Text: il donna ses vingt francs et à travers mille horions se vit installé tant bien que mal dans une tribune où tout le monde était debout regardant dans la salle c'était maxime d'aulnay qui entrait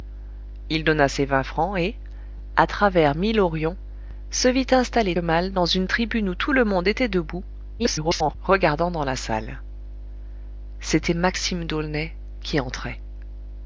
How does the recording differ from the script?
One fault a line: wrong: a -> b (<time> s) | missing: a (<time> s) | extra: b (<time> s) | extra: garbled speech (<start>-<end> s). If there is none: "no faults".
missing: tant bien que (5.2 s)
extra: garbled speech (7.8-8.4 s)